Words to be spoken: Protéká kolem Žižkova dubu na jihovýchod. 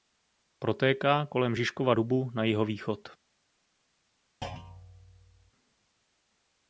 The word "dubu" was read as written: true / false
true